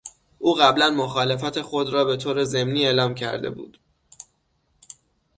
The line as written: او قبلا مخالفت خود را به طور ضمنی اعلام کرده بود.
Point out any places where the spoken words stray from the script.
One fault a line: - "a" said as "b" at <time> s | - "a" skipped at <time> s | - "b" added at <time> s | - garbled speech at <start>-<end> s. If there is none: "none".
none